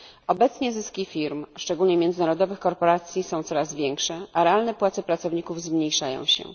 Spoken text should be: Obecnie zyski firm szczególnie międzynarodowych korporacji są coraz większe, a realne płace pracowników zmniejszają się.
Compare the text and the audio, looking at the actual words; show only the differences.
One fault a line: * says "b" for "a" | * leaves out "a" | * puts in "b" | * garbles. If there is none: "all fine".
all fine